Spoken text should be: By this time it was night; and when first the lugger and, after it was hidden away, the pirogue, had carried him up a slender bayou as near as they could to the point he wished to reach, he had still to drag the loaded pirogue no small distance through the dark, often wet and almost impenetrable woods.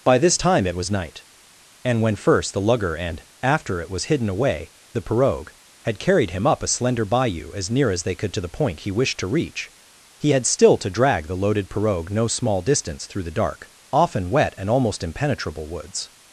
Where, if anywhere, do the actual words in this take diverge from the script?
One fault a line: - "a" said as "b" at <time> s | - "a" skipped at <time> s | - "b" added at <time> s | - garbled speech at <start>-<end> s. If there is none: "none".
none